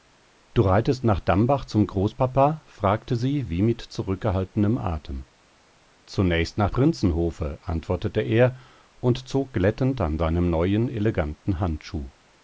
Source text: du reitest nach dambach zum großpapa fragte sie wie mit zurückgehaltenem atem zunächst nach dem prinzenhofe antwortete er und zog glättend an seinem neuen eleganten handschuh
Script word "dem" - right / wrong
wrong